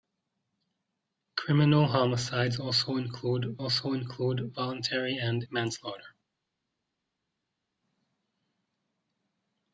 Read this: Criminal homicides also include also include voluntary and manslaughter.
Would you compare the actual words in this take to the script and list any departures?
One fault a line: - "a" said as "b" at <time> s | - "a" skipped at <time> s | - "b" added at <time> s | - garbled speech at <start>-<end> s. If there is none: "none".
none